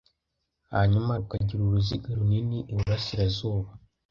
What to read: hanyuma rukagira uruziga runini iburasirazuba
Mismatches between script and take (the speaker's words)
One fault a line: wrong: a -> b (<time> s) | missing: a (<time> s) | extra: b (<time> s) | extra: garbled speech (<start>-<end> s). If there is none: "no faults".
no faults